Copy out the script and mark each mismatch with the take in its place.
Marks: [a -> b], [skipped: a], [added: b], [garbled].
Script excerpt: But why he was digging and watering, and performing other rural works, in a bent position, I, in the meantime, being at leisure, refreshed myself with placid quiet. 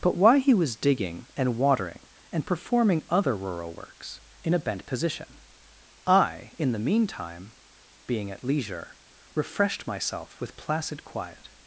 But why he was digging and watering, and performing other rural works, in a bent position, I, in the meantime, being at leisure, refreshed myself with placid quiet.